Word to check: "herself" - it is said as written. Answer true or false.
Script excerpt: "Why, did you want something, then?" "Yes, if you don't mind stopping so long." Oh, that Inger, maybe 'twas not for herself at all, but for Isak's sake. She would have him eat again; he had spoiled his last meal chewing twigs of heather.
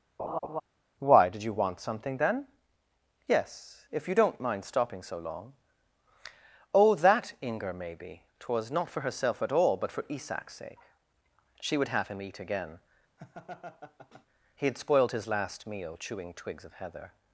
true